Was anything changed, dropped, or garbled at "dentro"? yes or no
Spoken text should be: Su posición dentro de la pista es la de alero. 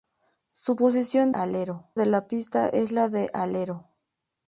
yes